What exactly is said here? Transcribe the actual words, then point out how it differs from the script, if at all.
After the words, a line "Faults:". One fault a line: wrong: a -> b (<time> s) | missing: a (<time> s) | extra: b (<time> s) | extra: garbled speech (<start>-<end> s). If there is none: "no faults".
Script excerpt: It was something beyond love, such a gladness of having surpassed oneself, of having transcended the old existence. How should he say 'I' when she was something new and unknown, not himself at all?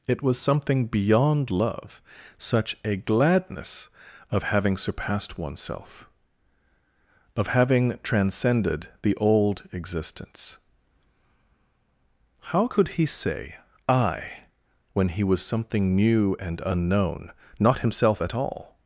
It was something beyond love, such a gladness of having surpassed oneself, of having transcended the old existence. How could he say 'I' when he was something new and unknown, not himself at all?
Faults:
wrong: should -> could (12.6 s)
wrong: she -> he (15.1 s)